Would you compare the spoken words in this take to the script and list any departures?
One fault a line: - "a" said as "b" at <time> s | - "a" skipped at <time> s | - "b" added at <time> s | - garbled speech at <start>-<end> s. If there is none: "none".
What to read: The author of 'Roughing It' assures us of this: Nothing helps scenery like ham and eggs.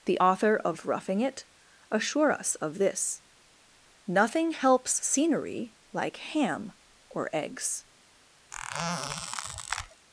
- "assures" said as "assure" at 1.9 s
- "and" said as "or" at 7.1 s